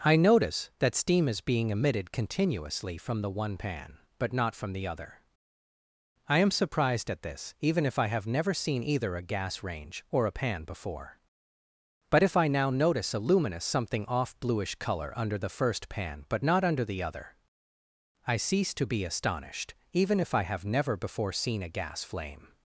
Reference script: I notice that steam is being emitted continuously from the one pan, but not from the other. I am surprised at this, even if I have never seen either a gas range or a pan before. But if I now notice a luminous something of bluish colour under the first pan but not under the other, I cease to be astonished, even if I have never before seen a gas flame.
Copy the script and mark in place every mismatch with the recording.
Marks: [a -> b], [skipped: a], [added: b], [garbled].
I notice that steam is being emitted continuously from the one pan, but not from the other. I am surprised at this, even if I have never seen either a gas range or a pan before. But if I now notice a luminous something [of -> off] bluish colour under the first pan but not under the other, I cease to be astonished, even if I have never before seen a gas flame.